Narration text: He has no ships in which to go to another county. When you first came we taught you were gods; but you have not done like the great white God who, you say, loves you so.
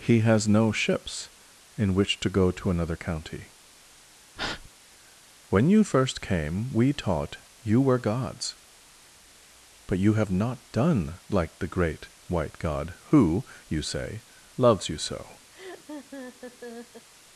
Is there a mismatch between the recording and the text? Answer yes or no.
no